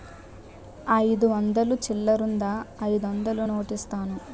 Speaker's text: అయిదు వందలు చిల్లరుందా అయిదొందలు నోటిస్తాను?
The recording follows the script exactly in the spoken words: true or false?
true